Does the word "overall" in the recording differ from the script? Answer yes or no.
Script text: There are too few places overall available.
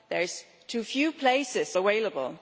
yes